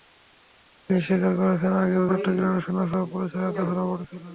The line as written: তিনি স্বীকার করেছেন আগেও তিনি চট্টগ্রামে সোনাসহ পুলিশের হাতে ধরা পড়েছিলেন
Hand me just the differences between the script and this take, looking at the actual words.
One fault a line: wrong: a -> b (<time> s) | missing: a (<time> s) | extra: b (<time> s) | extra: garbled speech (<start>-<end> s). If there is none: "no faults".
missing: তিনি (2.0 s)